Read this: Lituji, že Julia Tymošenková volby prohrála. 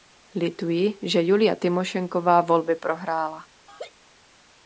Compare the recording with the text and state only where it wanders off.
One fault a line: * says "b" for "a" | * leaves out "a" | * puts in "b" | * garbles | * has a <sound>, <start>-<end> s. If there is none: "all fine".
* has a laugh, 3.7-3.9 s